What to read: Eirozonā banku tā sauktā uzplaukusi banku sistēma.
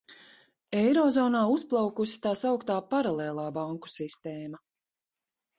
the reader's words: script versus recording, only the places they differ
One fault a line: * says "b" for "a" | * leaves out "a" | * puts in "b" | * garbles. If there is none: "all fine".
* says "uzplaukusi" for "banku"
* says "paralēlā" for "uzplaukusi"